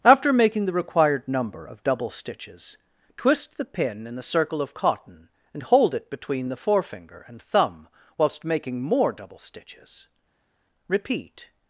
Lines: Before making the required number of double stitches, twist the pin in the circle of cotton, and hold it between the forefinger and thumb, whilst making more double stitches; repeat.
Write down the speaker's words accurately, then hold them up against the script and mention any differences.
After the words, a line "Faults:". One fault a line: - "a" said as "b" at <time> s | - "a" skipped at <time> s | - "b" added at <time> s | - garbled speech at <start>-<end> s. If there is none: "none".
After making the required number of double stitches, twist the pin in the circle of cotton, and hold it between the forefinger and thumb, whilst making more double stitches; repeat.
Faults:
- "Before" said as "After" at 0.0 s